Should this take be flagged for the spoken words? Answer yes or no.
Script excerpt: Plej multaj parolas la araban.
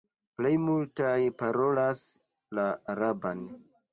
no